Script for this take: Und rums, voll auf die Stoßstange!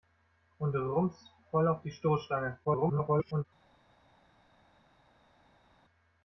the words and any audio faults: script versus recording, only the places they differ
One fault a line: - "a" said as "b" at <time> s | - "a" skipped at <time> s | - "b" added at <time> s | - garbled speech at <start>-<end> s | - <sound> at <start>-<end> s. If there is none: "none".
- garbled speech at 2.6-3.4 s